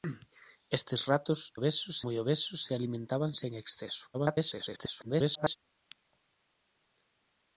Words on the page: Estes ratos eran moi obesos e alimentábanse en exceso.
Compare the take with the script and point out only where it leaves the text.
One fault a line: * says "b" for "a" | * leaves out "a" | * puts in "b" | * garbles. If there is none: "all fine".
* says "obesos" for "eran"
* garbles